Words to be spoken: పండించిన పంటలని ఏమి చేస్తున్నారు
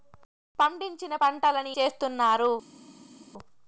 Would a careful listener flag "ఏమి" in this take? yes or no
yes